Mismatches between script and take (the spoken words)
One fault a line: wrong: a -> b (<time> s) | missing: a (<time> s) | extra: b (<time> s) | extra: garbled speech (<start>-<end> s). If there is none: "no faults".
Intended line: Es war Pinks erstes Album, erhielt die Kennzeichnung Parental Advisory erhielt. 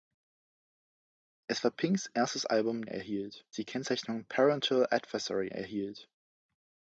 no faults